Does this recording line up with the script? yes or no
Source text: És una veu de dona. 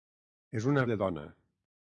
no